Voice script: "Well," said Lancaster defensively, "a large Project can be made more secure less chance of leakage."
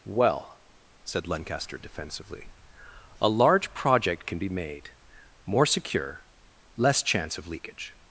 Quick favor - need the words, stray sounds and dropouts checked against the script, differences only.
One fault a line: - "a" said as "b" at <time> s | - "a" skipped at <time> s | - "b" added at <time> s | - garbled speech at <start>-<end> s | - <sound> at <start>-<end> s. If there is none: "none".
none